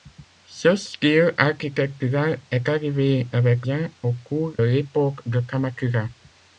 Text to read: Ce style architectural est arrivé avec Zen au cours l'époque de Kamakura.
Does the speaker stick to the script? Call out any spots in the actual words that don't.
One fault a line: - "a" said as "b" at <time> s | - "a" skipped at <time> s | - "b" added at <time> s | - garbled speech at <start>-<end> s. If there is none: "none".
none